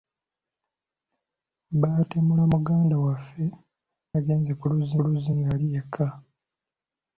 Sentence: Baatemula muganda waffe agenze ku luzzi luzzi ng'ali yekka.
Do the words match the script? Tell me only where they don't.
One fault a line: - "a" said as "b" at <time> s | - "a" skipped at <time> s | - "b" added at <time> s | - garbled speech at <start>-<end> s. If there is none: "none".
none